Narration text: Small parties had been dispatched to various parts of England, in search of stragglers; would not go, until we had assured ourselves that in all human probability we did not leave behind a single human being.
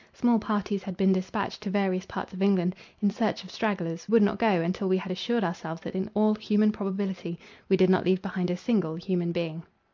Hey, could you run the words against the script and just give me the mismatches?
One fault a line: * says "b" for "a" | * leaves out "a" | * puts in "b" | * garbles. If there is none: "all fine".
all fine